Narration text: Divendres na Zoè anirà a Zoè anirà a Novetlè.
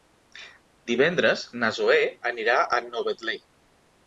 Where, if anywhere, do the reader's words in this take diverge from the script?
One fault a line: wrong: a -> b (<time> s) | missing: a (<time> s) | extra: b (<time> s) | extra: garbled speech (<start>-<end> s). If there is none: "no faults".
missing: Zoè anirà a (2.8 s)